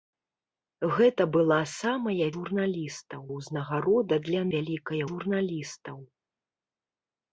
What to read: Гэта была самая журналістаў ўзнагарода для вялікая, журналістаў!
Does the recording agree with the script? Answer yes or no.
yes